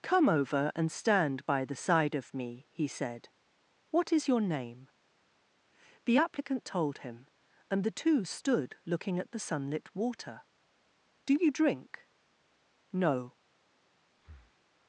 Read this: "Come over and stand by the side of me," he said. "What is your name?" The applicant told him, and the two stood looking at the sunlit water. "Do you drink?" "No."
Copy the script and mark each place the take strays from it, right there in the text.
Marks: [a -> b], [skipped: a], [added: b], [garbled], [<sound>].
"Come over and stand by the side of me," he said. "What is your name?" The applicant told him, and the two stood looking at the sunlit water. "Do you drink?" "No." [breath]